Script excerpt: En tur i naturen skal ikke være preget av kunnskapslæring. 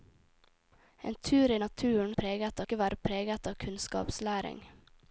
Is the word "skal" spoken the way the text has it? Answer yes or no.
no